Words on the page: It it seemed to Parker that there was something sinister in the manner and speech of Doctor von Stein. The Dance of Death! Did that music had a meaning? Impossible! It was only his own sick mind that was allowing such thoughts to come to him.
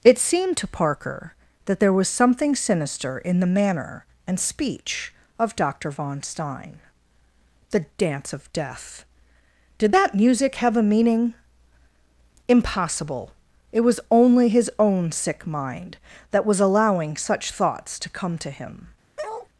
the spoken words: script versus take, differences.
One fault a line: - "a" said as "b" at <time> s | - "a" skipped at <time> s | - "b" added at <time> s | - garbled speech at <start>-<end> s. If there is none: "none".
- "it" skipped at 0.2 s
- "had" said as "have" at 10.6 s